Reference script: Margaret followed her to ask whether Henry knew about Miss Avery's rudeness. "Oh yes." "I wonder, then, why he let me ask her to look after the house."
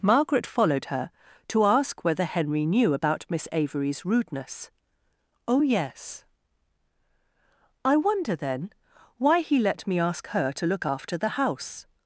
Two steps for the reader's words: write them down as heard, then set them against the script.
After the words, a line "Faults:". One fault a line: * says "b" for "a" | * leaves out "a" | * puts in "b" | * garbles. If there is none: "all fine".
Margaret followed her to ask whether Henry knew about Miss Avery's rudeness. "Oh yes." "I wonder, then, why he let me ask her to look after the house."
Faults:
all fine